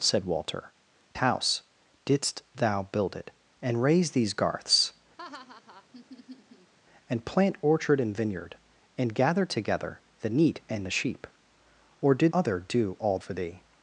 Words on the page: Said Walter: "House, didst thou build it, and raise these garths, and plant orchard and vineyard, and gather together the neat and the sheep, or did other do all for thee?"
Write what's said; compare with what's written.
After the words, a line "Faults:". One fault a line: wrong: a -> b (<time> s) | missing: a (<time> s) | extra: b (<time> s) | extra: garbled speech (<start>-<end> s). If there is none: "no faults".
Said Walter: "House, didst thou build it, and raise these garths, and plant orchard and vineyard, and gather together the neat and the sheep, or did other do all for thee?"
Faults:
no faults